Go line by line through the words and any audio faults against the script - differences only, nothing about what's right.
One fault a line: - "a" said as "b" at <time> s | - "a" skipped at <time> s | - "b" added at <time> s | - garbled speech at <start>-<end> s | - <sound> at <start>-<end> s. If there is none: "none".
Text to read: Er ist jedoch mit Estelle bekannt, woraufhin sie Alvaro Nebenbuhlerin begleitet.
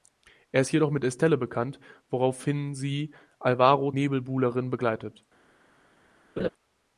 - laugh at 6.4-6.5 s